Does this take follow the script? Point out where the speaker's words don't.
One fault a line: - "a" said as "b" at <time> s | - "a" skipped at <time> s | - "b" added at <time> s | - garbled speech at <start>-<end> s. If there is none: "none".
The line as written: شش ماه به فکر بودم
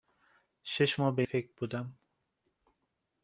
none